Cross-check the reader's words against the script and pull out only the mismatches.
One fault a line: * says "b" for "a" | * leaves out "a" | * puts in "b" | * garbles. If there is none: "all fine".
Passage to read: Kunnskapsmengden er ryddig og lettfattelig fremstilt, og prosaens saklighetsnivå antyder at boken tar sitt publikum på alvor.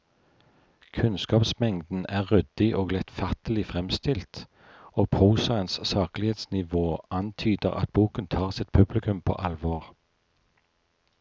all fine